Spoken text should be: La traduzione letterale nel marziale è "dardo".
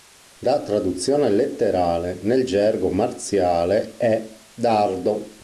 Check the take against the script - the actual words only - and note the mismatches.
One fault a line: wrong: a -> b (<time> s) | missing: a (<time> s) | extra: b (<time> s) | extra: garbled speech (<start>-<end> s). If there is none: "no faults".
extra: gergo (2.4 s)